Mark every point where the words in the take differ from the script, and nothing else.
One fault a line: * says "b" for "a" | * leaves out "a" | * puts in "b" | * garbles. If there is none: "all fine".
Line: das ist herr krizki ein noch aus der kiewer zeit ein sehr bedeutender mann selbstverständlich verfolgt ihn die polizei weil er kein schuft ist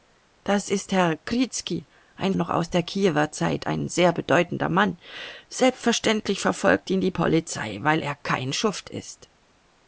all fine